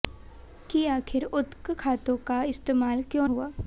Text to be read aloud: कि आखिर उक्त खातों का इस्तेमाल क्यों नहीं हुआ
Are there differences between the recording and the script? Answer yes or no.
yes